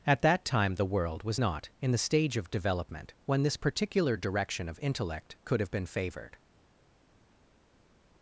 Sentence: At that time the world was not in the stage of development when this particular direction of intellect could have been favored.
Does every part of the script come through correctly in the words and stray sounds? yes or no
yes